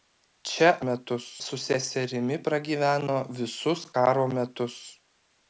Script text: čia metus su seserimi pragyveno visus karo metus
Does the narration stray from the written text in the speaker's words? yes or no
no